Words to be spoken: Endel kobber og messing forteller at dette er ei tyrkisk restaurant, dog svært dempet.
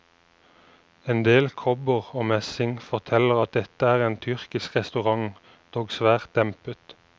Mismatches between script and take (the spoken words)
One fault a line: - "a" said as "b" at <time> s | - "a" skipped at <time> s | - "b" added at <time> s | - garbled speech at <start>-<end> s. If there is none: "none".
- "ei" said as "en" at 4.1 s